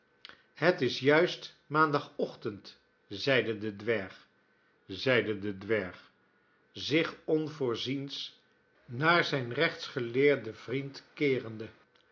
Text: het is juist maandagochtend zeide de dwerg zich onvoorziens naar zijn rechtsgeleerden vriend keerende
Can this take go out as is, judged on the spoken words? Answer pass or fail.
fail